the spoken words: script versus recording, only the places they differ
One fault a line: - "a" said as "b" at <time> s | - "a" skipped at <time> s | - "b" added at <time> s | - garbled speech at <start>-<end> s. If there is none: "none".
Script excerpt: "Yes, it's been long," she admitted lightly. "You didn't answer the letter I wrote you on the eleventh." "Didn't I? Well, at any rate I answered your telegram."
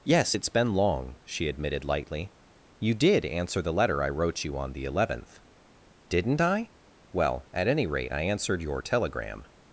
- "didn't" said as "did" at 2.9 s